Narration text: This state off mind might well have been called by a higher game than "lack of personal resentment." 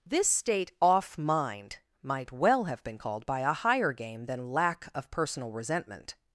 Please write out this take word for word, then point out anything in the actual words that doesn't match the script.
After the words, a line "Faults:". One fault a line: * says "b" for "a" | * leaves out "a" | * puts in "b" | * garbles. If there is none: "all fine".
This state off mind might well have been called by a higher game than "lack of personal resentment."
Faults:
all fine